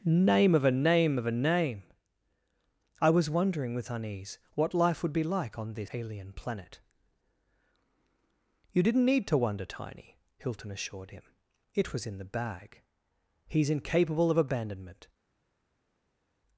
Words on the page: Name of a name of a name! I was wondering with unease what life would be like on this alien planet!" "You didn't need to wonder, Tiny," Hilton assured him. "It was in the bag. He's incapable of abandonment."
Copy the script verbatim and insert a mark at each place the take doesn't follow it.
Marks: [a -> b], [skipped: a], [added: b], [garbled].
Name of a name of a name! I was wondering with unease what life would be like on this alien planet!" "You didn't need to wonder, Tiny," Hilton assured him. "It was in the bag. He's incapable of abandonment."